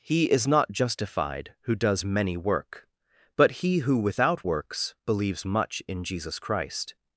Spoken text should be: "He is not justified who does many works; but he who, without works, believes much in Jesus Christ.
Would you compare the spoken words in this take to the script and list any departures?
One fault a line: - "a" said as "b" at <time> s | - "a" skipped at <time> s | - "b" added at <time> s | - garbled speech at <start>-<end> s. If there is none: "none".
- "works" said as "work" at 2.4 s